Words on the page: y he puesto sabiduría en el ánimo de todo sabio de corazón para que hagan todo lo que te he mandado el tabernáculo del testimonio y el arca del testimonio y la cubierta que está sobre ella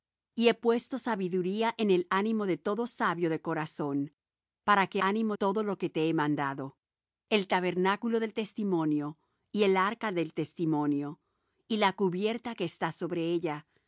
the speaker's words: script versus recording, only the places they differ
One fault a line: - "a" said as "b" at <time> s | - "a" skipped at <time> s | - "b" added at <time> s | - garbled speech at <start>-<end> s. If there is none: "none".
- "hagan" said as "ánimo" at 5.0 s